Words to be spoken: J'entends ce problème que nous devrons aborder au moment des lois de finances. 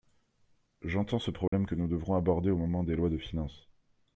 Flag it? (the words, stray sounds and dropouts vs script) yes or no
yes